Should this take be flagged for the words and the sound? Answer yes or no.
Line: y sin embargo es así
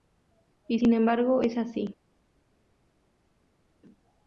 no